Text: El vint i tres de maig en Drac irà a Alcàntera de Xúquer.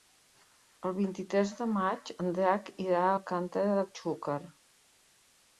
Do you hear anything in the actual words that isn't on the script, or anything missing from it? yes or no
no